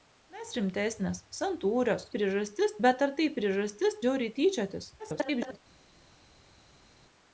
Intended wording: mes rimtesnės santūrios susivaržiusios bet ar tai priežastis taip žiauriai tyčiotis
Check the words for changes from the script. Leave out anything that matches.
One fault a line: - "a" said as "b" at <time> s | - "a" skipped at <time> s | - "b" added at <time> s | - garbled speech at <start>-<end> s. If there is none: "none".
- "susivaržiusios" said as "priežastis" at 2.2 s
- "taip" skipped at 4.0 s
- garbled speech at 5.0-5.6 s